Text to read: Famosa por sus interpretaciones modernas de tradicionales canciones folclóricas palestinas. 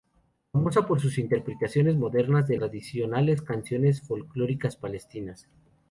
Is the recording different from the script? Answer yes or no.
no